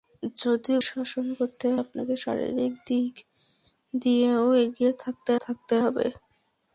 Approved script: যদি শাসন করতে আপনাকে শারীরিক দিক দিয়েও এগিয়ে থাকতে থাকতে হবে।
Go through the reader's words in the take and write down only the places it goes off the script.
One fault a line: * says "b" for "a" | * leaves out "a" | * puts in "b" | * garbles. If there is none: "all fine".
all fine